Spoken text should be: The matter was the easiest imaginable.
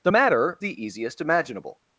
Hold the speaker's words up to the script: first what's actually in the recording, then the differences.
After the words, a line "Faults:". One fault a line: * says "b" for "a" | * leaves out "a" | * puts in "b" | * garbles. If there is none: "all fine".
The matter the easiest imaginable.
Faults:
* leaves out "was"